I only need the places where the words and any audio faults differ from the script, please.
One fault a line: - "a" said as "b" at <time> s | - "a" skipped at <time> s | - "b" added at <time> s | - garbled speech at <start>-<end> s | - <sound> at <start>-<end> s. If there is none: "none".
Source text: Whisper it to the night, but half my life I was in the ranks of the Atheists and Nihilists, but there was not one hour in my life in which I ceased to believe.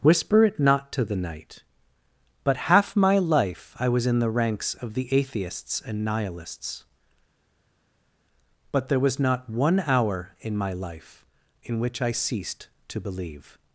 - "not" added at 0.6 s